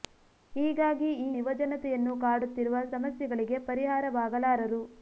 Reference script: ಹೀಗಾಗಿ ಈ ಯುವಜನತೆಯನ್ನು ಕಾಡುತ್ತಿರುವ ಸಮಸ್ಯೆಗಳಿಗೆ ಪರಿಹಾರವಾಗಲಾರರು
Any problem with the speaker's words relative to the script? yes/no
no